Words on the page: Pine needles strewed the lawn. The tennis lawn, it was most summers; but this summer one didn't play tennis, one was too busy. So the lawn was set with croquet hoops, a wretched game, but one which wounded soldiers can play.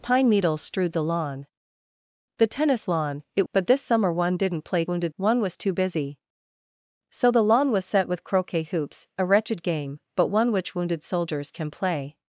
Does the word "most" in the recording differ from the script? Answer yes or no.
yes